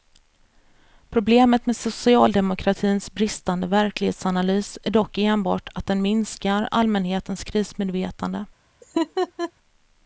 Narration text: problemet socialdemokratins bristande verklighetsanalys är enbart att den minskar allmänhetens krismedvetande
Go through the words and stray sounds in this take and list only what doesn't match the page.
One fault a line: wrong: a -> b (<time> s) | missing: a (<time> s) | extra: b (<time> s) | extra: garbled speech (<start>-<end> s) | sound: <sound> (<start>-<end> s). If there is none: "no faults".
extra: med (1.6 s)
extra: dock (4.9 s)
sound: laugh (8.8-9.5 s)